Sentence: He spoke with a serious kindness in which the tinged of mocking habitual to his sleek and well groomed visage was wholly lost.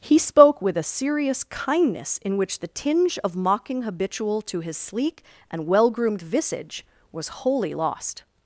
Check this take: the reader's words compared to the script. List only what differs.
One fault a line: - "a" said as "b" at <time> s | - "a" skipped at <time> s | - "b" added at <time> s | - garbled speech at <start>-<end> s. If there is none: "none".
- "tinged" said as "tinge" at 2.7 s